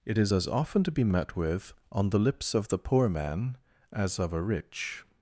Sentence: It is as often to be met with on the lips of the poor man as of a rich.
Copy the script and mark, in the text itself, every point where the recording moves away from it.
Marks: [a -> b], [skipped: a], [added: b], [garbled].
It is as often to be met with on the lips of the poor man as of a rich.